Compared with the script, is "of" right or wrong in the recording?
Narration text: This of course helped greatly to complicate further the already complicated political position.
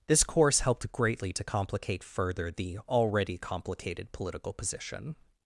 wrong